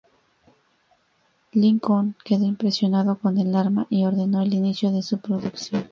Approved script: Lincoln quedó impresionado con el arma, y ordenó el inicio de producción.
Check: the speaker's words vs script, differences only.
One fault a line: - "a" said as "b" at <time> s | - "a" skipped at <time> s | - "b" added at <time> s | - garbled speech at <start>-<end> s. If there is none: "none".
- "su" added at 5.0 s